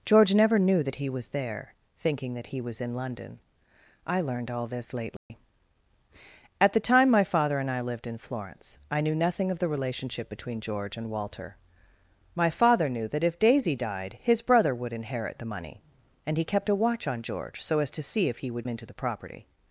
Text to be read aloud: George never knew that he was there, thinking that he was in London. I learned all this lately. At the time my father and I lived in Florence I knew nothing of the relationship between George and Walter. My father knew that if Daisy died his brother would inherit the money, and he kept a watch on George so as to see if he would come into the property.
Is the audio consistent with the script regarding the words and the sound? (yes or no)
no